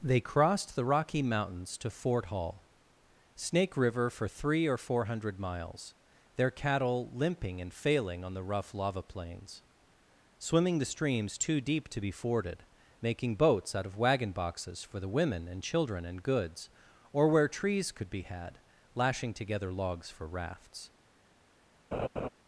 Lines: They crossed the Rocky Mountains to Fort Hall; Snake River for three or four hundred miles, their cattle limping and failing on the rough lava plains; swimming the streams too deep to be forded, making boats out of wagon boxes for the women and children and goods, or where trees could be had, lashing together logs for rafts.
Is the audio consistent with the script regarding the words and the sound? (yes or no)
no